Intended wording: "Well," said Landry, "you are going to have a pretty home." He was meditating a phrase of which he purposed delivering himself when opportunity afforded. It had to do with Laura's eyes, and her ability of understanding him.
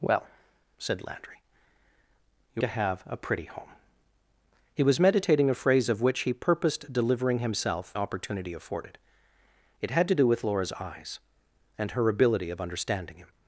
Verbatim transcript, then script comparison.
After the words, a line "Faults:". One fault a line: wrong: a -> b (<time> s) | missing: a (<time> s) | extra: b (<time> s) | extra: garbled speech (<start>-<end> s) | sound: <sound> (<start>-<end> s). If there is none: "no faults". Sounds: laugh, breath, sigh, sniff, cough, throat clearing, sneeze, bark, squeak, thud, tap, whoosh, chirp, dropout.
"Well," said Landry, "you to have a pretty home." He was meditating a phrase of which he purposed delivering himself opportunity afforded. It had to do with Laura's eyes, and her ability of understanding him.
Faults:
missing: are going (2.6 s)
missing: when (7.9 s)